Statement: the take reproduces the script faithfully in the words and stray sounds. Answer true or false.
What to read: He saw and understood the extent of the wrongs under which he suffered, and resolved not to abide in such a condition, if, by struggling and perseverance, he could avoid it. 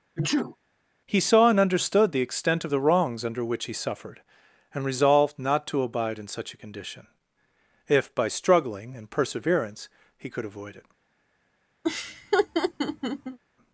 false